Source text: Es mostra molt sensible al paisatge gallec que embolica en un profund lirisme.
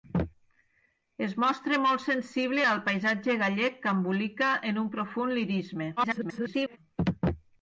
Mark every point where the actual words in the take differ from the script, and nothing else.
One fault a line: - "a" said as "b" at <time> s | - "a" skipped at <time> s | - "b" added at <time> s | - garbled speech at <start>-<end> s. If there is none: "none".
- garbled speech at 6.0-6.8 s